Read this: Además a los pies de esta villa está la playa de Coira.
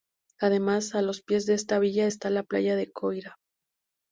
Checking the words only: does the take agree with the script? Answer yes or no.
yes